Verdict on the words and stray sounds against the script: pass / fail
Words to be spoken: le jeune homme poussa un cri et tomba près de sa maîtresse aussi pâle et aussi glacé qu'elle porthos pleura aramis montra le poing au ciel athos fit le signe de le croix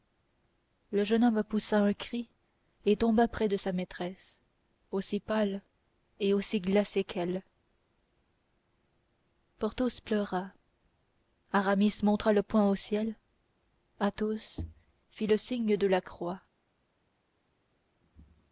fail